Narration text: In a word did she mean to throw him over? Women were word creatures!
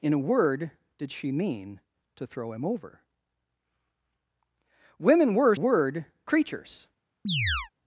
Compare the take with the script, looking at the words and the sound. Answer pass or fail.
fail